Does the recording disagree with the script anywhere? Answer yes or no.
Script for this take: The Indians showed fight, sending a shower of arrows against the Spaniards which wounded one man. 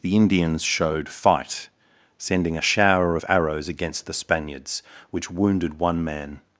no